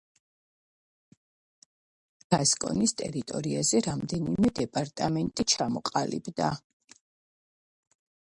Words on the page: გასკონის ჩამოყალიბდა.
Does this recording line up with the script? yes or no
no